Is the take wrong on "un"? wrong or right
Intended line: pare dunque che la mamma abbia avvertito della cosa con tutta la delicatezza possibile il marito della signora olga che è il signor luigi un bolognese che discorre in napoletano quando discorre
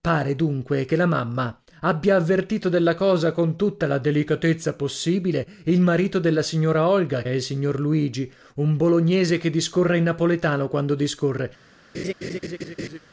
right